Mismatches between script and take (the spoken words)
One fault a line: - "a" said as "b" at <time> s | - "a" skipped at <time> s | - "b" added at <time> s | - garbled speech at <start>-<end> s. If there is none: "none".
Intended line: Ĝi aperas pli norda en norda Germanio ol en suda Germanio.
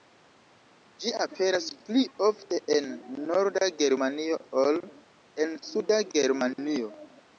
- "norda" said as "ofte" at 2.3 s